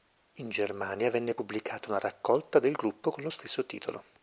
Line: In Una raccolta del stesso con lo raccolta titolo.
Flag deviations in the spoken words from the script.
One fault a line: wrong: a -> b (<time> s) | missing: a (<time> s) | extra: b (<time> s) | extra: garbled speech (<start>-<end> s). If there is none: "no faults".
extra: Germania venne pubblicata (0.5 s)
wrong: stesso -> gruppo (2.7 s)
wrong: raccolta -> stesso (3.3 s)